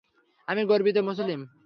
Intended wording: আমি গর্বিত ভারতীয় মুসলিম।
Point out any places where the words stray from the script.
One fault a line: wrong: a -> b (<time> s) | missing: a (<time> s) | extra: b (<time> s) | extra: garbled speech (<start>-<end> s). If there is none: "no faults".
missing: ভারতীয় (1.0 s)